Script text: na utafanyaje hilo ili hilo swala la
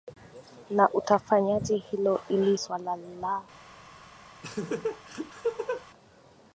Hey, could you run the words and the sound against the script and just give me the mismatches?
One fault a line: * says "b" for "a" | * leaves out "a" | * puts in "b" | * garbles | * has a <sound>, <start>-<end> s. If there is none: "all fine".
* leaves out "hilo"
* has a laugh, 4.4-5.8 s